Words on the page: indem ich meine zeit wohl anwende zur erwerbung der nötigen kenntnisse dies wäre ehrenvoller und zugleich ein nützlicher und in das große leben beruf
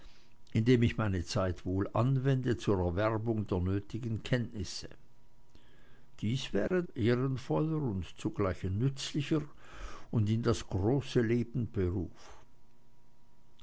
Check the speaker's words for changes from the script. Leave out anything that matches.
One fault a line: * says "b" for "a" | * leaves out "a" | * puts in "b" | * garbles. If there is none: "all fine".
all fine